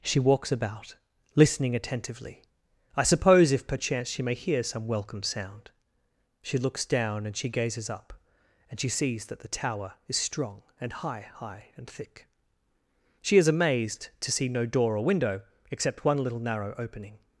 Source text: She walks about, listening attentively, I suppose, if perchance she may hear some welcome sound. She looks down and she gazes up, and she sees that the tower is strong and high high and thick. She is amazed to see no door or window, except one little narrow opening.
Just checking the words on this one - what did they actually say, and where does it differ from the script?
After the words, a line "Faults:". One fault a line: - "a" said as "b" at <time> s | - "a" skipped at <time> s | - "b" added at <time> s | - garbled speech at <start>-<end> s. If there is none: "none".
She walks about, listening attentively, I suppose, if perchance she may hear some welcome sound. She looks down and she gazes up, and she sees that the tower is strong and high high and thick. She is amazed to see no door or window, except one little narrow opening.
Faults:
none